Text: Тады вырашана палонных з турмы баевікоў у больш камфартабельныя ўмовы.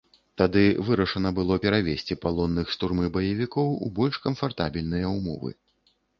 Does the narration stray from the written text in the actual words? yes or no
yes